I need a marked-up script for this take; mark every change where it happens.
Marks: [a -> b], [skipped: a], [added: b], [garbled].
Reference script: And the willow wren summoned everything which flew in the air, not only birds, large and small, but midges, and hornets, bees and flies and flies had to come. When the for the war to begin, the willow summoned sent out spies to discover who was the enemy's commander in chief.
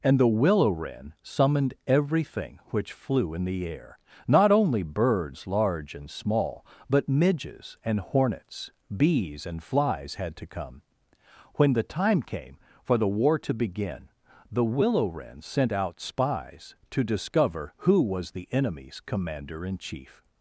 And the willow wren summoned everything which flew in the air, not only birds, large and small, but midges, and hornets, bees and flies [skipped: and flies] had to come. When the [added: time came] for the war to begin, the willow [summoned -> wren] sent out spies to discover who was the enemy's commander in chief.